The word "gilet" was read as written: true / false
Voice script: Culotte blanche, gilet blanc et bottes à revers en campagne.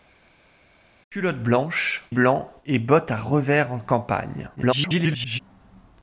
false